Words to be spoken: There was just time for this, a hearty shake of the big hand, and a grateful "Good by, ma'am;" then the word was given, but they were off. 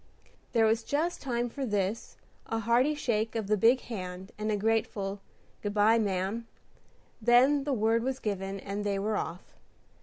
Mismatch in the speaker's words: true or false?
true